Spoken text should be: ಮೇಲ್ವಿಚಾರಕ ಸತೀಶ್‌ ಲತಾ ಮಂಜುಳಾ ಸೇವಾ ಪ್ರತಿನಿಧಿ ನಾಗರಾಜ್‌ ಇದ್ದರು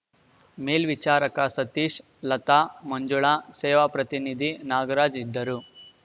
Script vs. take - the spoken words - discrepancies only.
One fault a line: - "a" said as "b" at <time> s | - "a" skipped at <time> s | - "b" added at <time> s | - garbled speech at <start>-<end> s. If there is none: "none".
none